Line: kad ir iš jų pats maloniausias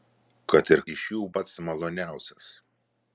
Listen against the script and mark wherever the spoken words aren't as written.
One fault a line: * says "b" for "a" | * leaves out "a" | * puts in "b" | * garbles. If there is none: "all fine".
all fine